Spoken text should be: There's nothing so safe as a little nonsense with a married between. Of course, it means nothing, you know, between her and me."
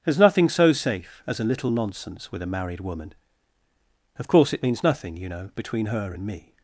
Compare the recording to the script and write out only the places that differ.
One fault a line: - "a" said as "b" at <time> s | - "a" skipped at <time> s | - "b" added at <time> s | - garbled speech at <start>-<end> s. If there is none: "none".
- "between" said as "woman" at 2.8 s